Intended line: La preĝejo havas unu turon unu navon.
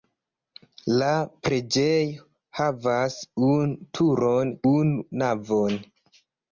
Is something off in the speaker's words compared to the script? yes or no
no